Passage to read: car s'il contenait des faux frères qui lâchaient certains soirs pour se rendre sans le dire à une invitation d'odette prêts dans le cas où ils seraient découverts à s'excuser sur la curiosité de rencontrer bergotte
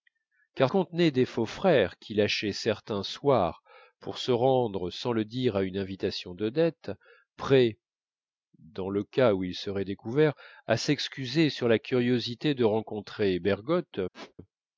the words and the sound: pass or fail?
fail